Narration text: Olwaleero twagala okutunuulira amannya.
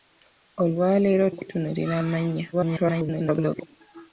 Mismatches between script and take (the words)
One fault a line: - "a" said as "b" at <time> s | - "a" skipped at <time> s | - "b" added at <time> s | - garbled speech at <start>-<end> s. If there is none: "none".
- "twagala" skipped at 1.2 s
- garbled speech at 2.5-3.7 s